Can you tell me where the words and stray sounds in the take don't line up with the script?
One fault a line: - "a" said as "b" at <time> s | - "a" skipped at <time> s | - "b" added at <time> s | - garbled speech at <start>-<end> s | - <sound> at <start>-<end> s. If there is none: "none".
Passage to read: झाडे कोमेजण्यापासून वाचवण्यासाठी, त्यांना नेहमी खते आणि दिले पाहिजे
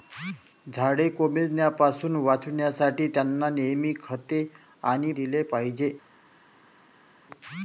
none